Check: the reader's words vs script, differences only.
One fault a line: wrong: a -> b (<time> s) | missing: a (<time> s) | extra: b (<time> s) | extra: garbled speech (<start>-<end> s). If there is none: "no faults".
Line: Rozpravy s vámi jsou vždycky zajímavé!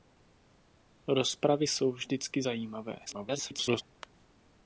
missing: s vámi (1.7 s)
extra: garbled speech (3.1-3.8 s)